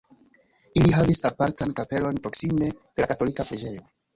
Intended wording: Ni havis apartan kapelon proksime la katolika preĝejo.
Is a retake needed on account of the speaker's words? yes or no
yes